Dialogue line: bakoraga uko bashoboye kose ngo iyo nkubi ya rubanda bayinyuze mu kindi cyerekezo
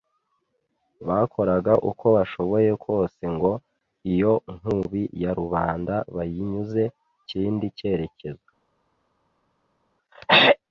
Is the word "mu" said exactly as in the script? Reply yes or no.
no